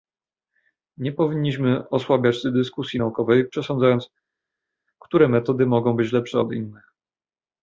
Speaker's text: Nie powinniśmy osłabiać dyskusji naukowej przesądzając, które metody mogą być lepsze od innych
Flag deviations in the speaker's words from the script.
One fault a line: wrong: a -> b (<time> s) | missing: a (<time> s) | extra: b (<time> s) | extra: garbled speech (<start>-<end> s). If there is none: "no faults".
no faults